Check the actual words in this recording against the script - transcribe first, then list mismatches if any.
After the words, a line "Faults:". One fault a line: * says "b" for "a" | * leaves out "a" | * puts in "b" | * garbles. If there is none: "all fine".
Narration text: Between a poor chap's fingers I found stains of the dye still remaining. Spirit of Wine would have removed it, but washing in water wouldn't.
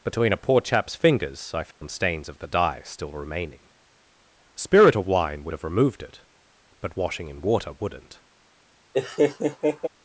Between a poor chap's fingers I found stains of the dye still remaining. Spirit of Wine would have removed it, but washing in water wouldn't.
Faults:
all fine